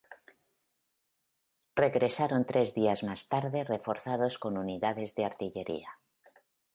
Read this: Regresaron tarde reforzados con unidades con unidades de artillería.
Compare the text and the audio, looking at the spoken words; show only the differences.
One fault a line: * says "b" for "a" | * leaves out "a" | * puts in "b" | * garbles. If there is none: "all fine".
* puts in "tres días más"
* leaves out "con unidades"